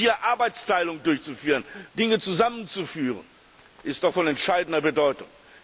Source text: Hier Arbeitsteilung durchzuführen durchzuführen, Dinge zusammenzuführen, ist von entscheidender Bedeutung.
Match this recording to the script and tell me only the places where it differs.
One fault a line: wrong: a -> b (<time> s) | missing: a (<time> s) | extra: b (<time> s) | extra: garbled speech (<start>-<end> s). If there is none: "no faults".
missing: durchzuführen (1.6 s)
extra: doch (4.0 s)